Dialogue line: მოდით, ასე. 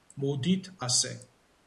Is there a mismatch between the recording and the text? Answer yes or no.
no